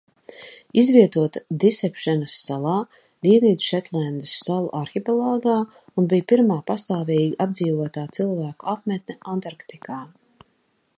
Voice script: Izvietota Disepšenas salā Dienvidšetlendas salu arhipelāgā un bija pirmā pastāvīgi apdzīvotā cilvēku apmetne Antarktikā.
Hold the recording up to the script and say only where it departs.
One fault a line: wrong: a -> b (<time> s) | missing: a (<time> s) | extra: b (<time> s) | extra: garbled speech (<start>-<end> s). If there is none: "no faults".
no faults